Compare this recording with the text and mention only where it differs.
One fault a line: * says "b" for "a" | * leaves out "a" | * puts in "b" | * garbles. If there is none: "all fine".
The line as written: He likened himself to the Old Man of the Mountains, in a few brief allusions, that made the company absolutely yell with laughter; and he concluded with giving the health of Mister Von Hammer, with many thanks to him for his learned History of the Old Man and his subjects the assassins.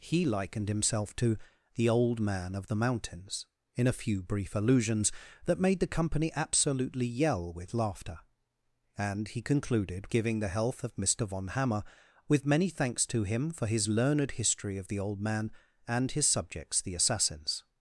* leaves out "with"